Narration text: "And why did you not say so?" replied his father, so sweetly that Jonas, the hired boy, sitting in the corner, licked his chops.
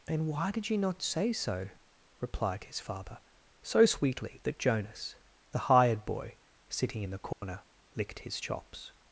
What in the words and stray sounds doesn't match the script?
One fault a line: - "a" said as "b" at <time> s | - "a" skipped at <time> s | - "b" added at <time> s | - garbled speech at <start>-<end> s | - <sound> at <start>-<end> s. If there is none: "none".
- dropout at 7.3-7.4 s